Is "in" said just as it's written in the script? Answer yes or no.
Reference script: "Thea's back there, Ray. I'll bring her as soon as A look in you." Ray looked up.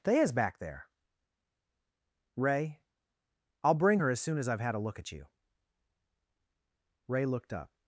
no